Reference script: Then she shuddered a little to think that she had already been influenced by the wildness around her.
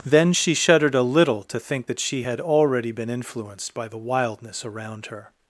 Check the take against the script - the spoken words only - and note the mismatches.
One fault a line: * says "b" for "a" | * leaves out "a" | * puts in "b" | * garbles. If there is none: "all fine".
all fine